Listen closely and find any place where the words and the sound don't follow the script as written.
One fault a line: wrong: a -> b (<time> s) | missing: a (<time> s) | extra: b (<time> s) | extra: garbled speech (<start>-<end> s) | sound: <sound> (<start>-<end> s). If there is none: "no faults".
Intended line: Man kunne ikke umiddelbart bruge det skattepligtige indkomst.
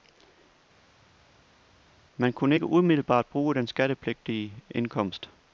wrong: det -> den (3.5 s)